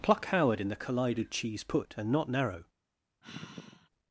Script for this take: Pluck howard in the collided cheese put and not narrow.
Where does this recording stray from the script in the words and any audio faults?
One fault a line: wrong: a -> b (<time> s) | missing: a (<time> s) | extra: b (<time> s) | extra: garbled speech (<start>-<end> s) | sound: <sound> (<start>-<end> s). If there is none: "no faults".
sound: sigh (3.2-3.9 s)